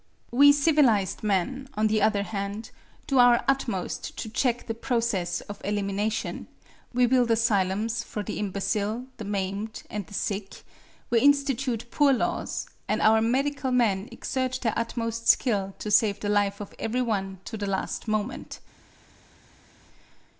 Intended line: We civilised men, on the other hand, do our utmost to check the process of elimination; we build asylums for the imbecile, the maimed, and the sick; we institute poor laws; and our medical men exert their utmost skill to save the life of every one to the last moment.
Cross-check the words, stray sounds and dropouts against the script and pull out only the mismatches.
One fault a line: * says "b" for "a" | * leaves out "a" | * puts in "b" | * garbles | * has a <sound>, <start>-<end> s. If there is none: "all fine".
all fine